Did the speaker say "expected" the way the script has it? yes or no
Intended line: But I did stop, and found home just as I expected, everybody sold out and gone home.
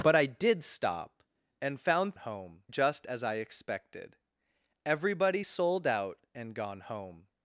yes